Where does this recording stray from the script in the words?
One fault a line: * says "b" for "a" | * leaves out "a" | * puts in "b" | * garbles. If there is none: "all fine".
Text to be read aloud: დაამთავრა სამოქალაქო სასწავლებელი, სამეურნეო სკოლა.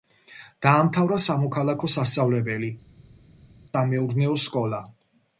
all fine